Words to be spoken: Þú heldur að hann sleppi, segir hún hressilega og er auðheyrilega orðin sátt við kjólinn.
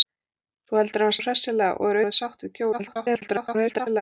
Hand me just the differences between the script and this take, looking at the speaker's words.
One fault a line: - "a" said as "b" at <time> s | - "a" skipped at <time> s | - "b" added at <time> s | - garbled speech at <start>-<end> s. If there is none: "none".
- "sleppi segir" skipped at 1.2 s
- "auðheyrilega" skipped at 2.0 s
- garbled speech at 2.7-4.0 s